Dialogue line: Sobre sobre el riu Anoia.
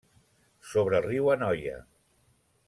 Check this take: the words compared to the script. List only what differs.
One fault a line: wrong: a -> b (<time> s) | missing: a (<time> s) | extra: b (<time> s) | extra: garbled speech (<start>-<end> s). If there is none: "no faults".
missing: sobre (1.0 s)